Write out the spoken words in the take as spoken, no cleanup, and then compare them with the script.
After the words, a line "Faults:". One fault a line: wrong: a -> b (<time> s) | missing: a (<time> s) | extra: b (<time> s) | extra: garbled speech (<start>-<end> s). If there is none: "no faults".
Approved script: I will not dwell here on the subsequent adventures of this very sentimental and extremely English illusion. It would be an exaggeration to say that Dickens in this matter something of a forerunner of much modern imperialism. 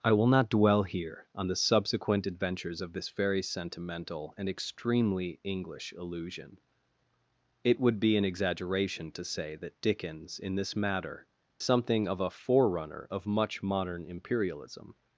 I will not dwell here on the subsequent adventures of this very sentimental and extremely English illusion. It would be an exaggeration to say that Dickens in this matter something of a forerunner of much modern imperialism.
Faults:
no faults